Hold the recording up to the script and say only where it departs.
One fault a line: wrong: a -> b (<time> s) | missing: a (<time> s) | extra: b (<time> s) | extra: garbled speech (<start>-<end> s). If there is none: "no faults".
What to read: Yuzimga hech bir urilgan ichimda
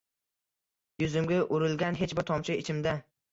extra: urilgan (1.6 s)
wrong: urilgan -> tomchi (2.3 s)